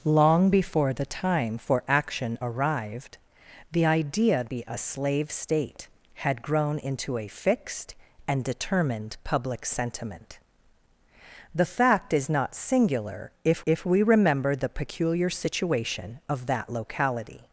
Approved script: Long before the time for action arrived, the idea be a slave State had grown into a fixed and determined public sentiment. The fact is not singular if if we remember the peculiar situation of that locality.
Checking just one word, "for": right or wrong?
right